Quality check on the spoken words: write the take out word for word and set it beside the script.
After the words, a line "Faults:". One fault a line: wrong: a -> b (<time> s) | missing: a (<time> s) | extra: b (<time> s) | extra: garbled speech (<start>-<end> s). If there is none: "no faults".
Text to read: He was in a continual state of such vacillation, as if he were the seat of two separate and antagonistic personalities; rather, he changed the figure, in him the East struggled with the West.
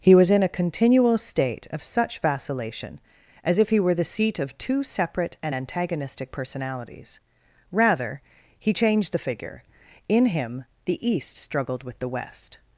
He was in a continual state of such vacillation, as if he were the seat of two separate and antagonistic personalities; rather, he changed the figure, in him the East struggled with the West.
Faults:
no faults